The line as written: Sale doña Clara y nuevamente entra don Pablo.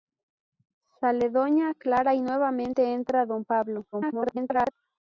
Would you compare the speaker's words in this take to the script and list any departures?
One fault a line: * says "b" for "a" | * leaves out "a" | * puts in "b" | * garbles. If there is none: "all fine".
* garbles